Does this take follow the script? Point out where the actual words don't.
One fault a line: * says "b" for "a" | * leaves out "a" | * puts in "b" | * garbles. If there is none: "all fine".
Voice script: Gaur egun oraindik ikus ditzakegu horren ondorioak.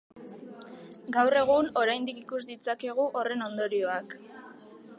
all fine